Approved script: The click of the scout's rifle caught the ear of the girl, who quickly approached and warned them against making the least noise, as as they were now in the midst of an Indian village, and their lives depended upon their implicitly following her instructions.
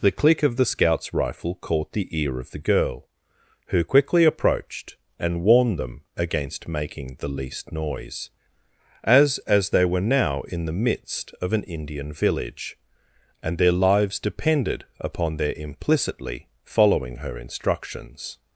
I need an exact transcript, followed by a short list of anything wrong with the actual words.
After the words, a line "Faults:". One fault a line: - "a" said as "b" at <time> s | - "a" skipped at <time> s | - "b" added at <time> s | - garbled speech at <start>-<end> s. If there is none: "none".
The click of the scout's rifle caught the ear of the girl, who quickly approached and warned them against making the least noise, as as they were now in the midst of an Indian village, and their lives depended upon their implicitly following her instructions.
Faults:
none